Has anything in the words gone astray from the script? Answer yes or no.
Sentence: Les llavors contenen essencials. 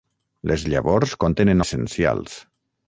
no